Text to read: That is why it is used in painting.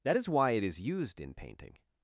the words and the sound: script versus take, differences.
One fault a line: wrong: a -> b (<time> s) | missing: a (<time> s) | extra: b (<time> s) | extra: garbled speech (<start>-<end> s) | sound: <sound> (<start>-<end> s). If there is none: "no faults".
no faults